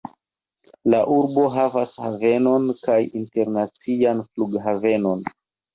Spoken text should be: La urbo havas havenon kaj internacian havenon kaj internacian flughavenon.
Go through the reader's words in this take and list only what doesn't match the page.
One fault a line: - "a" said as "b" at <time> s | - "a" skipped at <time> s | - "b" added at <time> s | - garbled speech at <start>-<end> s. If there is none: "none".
- "havenon kaj internacian" skipped at 4.3 s